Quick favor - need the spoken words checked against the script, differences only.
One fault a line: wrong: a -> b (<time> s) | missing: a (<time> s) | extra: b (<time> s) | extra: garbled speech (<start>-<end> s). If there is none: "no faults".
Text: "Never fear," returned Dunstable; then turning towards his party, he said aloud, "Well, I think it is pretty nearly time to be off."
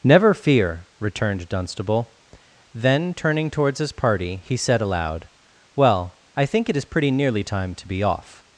no faults